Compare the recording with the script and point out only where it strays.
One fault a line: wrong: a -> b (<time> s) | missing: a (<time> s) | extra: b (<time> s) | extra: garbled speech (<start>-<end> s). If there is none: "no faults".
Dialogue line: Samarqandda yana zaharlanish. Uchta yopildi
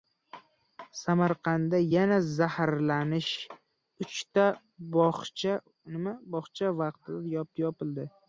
extra: bog‘cha vaqtincha (5.0 s)